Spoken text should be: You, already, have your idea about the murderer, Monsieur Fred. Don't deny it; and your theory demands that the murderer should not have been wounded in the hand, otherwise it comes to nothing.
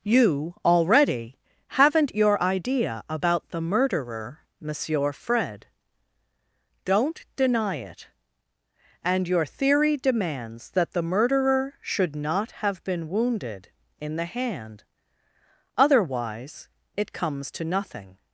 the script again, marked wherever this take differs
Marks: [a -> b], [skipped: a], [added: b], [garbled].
You, already, [have -> haven't] your idea about the murderer, Monsieur Fred. Don't deny it; and your theory demands that the murderer should not have been wounded in the hand, otherwise it comes to nothing.